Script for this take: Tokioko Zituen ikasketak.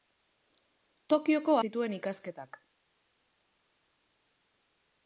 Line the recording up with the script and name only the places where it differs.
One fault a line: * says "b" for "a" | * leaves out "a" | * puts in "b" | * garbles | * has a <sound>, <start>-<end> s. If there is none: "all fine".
all fine